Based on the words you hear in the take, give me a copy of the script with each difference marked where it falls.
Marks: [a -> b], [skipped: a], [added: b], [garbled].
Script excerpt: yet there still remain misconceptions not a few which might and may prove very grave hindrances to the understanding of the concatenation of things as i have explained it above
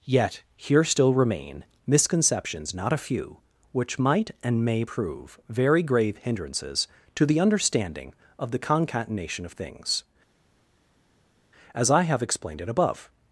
yet [there -> here] still remain misconceptions not a few which might and may prove very grave hindrances to the understanding of the concatenation of things as i have explained it above